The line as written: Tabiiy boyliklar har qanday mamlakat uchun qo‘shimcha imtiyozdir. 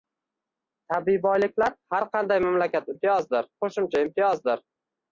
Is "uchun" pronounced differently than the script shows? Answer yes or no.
yes